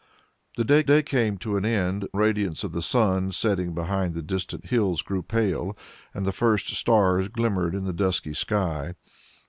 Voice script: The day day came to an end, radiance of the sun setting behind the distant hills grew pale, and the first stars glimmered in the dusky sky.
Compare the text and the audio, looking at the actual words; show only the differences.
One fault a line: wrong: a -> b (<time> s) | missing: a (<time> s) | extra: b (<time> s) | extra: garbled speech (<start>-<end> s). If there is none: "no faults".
no faults